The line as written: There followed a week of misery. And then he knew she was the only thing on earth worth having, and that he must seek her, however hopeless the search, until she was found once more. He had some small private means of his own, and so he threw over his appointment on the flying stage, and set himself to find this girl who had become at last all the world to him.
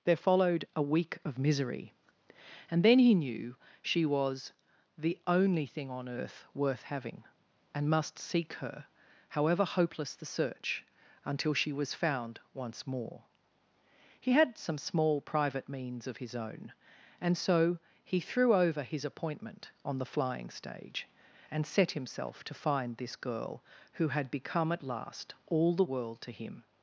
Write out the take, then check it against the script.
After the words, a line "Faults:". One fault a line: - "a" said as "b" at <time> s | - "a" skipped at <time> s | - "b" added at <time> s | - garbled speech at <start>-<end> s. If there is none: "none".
There followed a week of misery. And then he knew she was the only thing on earth worth having, and must seek her, however hopeless the search, until she was found once more. He had some small private means of his own, and so he threw over his appointment on the flying stage, and set himself to find this girl who had become at last all the world to him.
Faults:
- "that he" skipped at 7.9 s